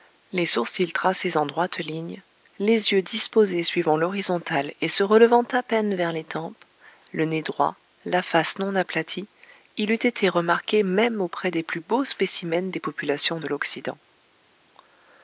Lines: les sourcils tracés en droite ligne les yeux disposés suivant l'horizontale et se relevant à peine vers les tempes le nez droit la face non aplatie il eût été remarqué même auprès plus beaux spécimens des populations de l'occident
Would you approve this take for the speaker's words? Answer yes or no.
no